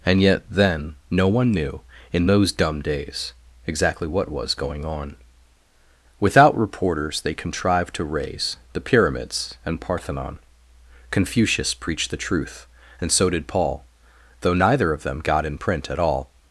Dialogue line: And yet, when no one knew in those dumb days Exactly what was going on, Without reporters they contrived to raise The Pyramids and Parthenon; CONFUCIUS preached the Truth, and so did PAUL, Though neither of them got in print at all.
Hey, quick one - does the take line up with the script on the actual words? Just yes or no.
no